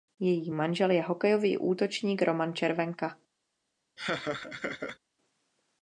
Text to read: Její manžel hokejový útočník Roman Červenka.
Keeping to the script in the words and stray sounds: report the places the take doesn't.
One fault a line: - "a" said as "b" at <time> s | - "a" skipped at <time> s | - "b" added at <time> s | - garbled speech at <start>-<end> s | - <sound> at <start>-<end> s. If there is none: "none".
- "je" added at 0.9 s
- laugh at 4.0-5.0 s